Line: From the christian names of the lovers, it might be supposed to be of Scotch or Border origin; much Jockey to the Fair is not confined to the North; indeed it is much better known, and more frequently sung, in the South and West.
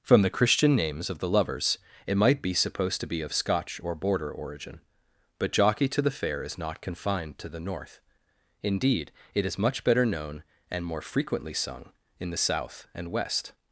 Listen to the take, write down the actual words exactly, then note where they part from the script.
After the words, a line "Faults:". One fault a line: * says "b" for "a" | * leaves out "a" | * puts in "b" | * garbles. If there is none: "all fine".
From the christian names of the lovers, it might be supposed to be of Scotch or Border origin; but Jockey to the Fair is not confined to the North; indeed it is much better known, and more frequently sung, in the South and West.
Faults:
* says "but" for "much"